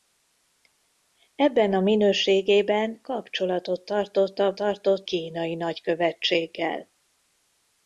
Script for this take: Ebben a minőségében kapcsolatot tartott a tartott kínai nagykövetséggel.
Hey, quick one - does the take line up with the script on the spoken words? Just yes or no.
yes